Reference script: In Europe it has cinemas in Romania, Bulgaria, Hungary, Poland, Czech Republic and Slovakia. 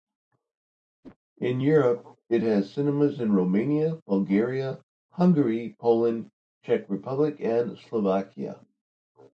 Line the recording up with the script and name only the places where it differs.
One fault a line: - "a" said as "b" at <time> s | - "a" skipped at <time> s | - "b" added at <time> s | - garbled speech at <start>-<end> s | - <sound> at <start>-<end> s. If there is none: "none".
- whoosh at 1.0-1.2 s